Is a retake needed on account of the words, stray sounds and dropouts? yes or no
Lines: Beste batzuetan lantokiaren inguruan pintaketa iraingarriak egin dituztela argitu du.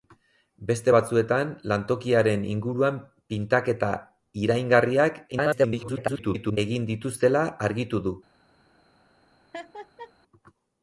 yes